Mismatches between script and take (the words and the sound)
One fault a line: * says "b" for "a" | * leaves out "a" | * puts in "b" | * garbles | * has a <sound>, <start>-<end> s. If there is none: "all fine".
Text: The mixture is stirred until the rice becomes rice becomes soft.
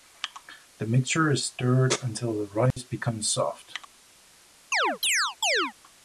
* has a dropout, 2.7-2.8 s
* leaves out "rice becomes"
* has a chirp, 4.7-5.7 s